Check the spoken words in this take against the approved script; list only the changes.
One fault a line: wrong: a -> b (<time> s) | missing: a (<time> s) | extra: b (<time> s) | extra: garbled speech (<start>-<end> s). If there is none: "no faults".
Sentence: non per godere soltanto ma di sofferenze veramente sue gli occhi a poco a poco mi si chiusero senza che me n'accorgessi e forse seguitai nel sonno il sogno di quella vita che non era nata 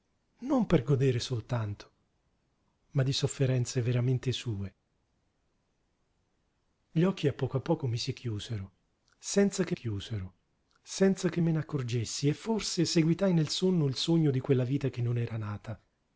extra: chiusero senza che (9.7 s)